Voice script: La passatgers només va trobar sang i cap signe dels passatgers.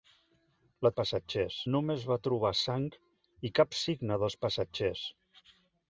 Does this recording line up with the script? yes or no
yes